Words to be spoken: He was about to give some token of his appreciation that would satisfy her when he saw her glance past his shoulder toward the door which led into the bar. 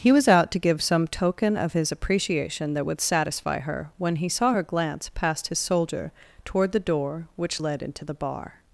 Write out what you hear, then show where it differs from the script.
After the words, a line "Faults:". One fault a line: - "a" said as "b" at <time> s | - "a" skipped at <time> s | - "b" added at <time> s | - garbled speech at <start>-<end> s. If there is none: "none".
He was out to give some token of his appreciation that would satisfy her when he saw her glance past his soldier toward the door which led into the bar.
Faults:
- "about" said as "out" at 0.3 s
- "shoulder" said as "soldier" at 5.6 s